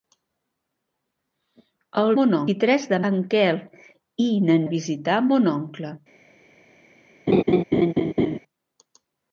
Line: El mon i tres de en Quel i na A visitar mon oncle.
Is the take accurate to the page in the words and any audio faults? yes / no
no